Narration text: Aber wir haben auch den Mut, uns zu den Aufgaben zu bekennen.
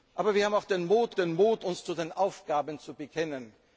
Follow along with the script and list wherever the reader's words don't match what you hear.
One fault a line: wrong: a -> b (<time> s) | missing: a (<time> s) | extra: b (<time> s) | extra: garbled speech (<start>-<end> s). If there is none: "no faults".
extra: den Mut (1.1 s)